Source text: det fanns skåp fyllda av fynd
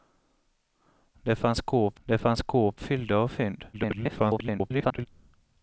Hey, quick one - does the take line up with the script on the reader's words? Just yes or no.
no